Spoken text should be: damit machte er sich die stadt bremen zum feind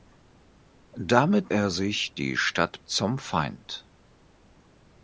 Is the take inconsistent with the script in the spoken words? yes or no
yes